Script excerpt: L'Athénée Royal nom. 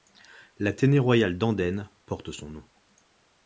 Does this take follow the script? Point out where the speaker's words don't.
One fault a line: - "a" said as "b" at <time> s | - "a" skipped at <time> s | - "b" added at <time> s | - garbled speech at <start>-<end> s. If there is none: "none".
- "d'Andenne porte son" added at 1.4 s